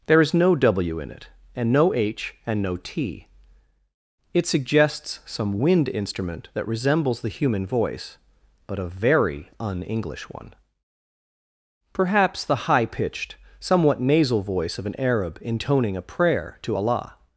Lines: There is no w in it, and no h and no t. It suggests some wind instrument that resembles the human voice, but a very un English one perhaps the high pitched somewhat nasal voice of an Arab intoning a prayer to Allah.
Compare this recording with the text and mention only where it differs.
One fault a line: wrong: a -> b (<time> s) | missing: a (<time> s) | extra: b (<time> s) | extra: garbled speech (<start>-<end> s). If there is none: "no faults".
no faults